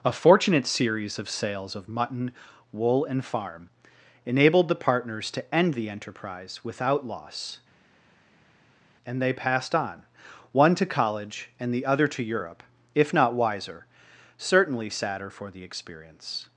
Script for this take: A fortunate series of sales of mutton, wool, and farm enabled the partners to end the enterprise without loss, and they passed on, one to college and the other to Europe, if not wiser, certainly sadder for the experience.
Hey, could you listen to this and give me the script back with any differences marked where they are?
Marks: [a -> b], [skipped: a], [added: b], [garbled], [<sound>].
A fortunate series of sales of mutton, wool, and farm enabled the partners to end the enterprise without loss, and they passed on, one to college and the other to Europe, if not wiser, certainly sadder for the experience.